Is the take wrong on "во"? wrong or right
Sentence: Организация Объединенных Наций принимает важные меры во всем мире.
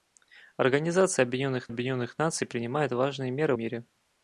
wrong